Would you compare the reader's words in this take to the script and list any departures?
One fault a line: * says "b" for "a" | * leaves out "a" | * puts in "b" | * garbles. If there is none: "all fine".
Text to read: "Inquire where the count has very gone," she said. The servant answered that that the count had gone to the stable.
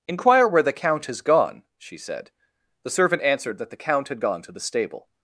* leaves out "very"
* leaves out "that"